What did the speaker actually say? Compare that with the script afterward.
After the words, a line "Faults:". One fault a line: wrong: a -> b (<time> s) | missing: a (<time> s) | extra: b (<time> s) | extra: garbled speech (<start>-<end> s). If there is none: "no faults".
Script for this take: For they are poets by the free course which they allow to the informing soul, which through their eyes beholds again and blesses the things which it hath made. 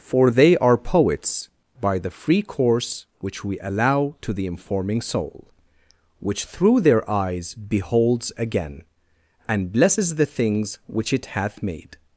For they are poets by the free course which we allow to the informing soul, which through their eyes beholds again and blesses the things which it hath made.
Faults:
wrong: they -> we (3.4 s)